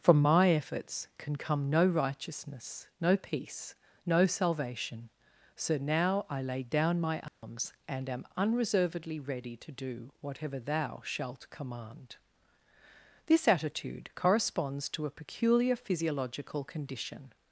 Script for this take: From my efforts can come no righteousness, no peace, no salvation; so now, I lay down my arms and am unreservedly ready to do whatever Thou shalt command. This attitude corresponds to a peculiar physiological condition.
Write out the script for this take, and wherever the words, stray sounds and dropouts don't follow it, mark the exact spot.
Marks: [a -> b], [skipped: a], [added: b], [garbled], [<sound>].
From my efforts can come no righteousness, no peace, no salvation; so now, I lay down my arms [dropout] and am unreservedly ready to do whatever Thou shalt command. This attitude corresponds to a peculiar physiological condition.